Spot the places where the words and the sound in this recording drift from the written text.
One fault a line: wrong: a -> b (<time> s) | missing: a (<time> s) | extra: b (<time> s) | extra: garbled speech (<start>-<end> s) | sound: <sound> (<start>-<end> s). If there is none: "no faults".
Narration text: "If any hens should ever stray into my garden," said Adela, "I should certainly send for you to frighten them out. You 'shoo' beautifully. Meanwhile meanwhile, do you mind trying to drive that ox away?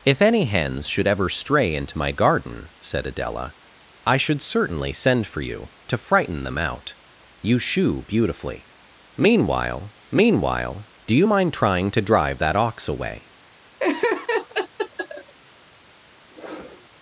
sound: laugh (13.8-15.3 s)
sound: sniff (16.3-16.9 s)